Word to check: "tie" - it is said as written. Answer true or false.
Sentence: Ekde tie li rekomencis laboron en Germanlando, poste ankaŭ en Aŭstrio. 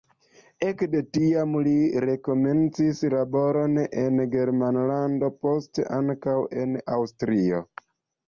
false